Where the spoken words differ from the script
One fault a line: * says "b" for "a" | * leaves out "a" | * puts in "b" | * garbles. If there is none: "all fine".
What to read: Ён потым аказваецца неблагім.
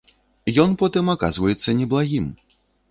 all fine